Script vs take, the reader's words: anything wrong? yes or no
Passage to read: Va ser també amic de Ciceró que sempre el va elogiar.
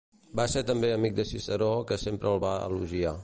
no